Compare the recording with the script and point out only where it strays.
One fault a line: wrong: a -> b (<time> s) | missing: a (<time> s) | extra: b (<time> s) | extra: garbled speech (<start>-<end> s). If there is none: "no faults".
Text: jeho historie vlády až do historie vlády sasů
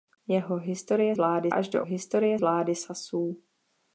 no faults